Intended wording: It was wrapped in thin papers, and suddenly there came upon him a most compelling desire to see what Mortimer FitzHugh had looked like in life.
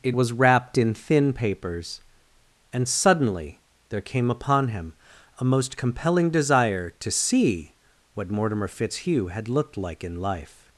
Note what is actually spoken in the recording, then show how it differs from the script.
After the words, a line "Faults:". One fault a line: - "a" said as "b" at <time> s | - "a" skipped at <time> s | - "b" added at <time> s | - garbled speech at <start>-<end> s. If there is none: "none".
It was wrapped in thin papers, and suddenly there came upon him a most compelling desire to see what Mortimer FitzHugh had looked like in life.
Faults:
none